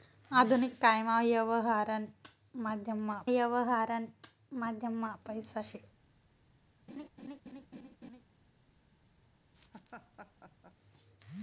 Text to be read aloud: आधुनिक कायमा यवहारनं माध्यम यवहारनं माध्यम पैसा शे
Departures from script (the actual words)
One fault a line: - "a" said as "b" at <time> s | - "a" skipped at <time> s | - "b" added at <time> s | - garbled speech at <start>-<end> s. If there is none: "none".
none